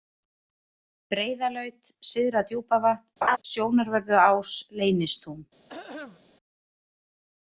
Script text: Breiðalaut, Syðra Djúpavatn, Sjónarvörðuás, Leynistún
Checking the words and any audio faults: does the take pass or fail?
fail